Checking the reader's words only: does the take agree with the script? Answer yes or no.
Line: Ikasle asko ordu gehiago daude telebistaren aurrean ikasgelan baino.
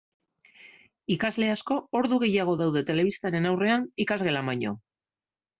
yes